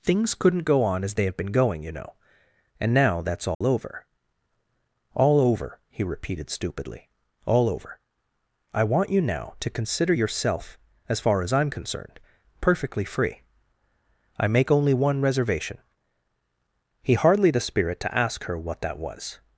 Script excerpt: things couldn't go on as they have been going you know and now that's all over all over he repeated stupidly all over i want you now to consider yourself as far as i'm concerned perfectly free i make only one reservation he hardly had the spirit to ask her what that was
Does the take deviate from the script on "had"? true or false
true